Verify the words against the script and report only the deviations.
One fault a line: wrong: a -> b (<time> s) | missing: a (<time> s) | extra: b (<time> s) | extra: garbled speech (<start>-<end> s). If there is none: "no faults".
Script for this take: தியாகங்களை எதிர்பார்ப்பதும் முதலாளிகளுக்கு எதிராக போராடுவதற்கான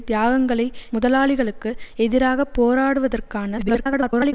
missing: எதிர்பார்ப்பதும் (0.7 s)
extra: garbled speech (3.6-4.3 s)